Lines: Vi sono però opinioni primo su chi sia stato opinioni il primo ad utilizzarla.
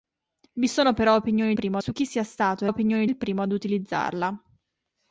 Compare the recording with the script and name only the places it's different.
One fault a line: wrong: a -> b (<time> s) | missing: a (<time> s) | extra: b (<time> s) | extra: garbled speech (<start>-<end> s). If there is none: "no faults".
no faults